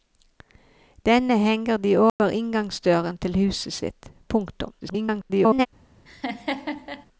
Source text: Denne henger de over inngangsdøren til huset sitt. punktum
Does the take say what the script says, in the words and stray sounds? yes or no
no